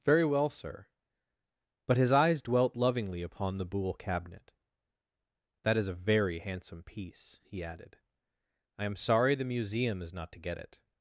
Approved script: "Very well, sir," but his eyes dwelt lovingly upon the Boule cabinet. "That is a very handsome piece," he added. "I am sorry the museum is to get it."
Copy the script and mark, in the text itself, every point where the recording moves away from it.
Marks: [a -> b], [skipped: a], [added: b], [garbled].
"Very well, sir," but his eyes dwelt lovingly upon the Boule cabinet. "That is a very handsome piece," he added. "I am sorry the museum is [added: not] to get it."